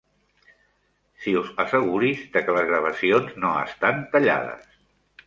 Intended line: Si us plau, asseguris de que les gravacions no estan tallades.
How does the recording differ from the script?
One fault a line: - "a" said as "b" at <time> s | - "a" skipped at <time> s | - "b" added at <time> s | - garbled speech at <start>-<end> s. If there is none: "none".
- "plau" skipped at 1.5 s